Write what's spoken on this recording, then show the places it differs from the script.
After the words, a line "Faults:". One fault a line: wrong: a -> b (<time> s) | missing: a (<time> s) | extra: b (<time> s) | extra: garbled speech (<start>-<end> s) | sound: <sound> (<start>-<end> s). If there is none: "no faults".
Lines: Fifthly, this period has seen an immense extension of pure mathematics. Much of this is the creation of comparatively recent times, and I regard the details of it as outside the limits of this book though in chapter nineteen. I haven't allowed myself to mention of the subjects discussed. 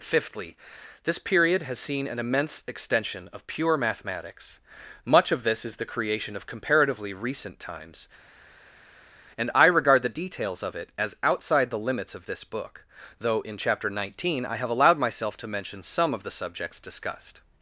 Fifthly, this period has seen an immense extension of pure mathematics. Much of this is the creation of comparatively recent times, and I regard the details of it as outside the limits of this book though in chapter nineteen. I have allowed myself to mention some of the subjects discussed.
Faults:
wrong: haven't -> have (14.6 s)
extra: some (15.8 s)